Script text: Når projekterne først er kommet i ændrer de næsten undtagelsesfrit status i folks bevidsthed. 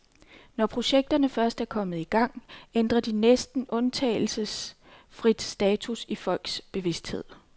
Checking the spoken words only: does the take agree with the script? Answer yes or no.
no